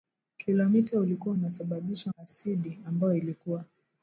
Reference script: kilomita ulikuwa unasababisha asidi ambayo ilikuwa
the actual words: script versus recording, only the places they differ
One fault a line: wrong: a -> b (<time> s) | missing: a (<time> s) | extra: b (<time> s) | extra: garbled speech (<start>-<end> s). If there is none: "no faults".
no faults